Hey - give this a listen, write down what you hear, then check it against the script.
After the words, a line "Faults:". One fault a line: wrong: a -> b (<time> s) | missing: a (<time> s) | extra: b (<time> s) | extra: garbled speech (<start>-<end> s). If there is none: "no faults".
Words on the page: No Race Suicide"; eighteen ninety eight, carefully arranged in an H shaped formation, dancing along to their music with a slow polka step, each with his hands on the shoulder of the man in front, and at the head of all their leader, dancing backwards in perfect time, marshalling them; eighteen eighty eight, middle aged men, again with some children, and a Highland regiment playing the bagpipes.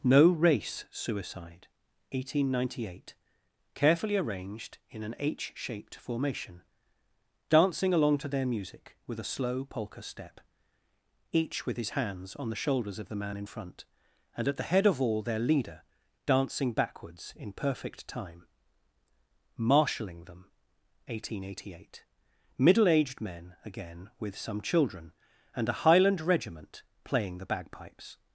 No Race Suicide"; eighteen ninety eight, carefully arranged in an H shaped formation, dancing along to their music with a slow polka step, each with his hands on the shoulders of the man in front, and at the head of all their leader, dancing backwards in perfect time, marshalling them; eighteen eighty eight, middle aged men, again with some children, and a Highland regiment playing the bagpipes.
Faults:
wrong: shoulder -> shoulders (12.6 s)